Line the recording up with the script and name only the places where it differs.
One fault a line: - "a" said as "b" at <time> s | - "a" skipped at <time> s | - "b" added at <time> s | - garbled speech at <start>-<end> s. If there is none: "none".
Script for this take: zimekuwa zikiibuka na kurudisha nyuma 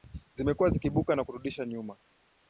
none